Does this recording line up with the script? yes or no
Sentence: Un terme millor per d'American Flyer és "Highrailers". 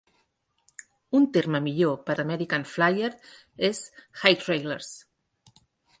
yes